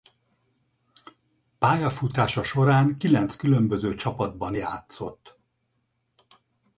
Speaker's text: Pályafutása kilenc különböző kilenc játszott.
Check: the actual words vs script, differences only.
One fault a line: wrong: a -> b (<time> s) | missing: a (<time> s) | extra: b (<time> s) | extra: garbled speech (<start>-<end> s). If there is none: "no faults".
extra: során (2.4 s)
wrong: kilenc -> csapatban (3.9 s)